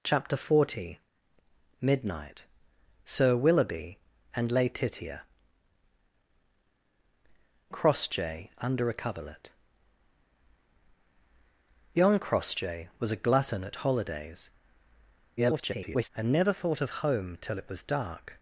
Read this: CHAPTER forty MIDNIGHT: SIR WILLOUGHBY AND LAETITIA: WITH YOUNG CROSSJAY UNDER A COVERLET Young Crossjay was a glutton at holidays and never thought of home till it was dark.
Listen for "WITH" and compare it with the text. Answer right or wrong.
wrong